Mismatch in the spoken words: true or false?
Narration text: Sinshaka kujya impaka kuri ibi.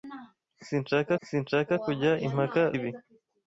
true